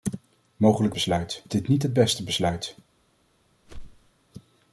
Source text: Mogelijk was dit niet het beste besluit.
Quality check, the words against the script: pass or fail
fail